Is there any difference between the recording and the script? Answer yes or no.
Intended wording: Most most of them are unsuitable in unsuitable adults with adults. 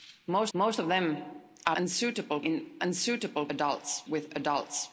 no